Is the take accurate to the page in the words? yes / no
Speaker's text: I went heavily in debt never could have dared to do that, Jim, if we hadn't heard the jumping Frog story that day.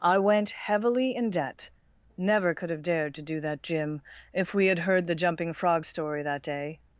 no